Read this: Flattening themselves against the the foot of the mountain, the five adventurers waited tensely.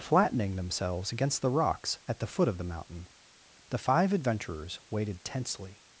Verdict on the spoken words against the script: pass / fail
fail